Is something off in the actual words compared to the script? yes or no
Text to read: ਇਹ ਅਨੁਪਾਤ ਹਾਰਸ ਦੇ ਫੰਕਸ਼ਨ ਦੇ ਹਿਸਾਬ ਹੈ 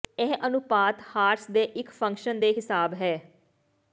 yes